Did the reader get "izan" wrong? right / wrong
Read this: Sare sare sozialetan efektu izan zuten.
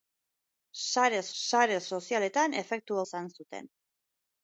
right